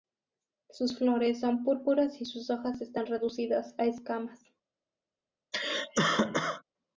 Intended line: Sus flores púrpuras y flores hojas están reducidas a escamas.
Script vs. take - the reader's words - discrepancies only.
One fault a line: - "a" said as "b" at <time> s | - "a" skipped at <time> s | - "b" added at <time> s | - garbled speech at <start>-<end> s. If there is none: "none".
- "son" added at 1.4 s
- "flores" said as "sus" at 2.2 s